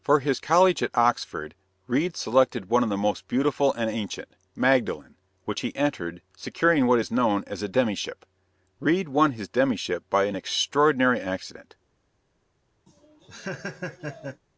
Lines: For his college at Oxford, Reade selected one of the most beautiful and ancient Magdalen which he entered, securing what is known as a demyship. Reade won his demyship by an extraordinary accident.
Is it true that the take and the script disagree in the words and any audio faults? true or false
true